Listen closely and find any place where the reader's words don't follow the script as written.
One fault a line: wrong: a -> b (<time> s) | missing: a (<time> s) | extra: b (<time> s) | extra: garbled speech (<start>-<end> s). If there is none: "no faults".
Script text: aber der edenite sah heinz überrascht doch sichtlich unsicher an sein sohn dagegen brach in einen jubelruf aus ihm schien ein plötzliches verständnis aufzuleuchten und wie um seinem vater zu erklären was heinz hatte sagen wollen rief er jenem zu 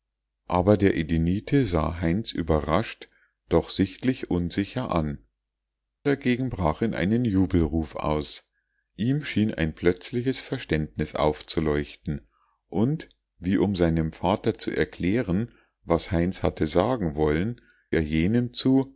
missing: sein sohn (5.2 s)
missing: rief (17.6 s)